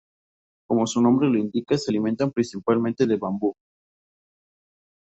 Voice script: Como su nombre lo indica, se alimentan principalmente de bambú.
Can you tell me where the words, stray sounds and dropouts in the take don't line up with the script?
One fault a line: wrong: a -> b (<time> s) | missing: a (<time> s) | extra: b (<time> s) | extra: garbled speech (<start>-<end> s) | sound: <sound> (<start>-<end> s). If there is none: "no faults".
no faults